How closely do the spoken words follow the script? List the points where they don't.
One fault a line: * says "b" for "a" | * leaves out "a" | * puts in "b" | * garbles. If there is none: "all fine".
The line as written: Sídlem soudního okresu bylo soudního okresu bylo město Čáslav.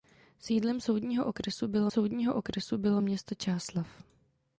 all fine